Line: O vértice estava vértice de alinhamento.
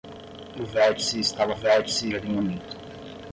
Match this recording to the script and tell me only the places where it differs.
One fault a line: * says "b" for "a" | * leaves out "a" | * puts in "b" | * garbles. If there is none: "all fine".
all fine